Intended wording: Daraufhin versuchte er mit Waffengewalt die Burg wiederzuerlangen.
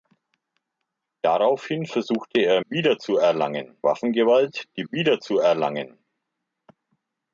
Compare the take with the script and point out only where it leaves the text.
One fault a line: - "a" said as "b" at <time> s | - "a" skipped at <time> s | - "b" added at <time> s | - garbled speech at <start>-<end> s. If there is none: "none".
- "mit" said as "wiederzuerlangen" at 2.7 s
- "Burg" skipped at 4.8 s